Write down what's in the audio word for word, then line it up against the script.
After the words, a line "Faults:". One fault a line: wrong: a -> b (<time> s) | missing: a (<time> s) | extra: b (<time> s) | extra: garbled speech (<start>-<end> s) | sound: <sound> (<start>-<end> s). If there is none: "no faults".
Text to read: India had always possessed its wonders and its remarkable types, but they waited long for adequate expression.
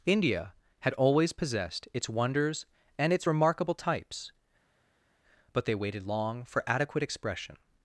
India had always possessed its wonders and its remarkable types, but they waited long for adequate expression.
Faults:
no faults